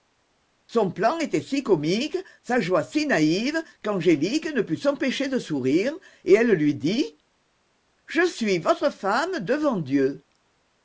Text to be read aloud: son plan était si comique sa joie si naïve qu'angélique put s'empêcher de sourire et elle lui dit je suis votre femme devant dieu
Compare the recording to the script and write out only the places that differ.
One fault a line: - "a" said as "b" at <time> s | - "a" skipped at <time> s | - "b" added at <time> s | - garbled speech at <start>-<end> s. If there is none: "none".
- "ne" added at 4.5 s